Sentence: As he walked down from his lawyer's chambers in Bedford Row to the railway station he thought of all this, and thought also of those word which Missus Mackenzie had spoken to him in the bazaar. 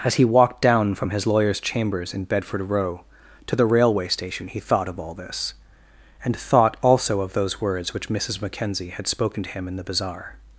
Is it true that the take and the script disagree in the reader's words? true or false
true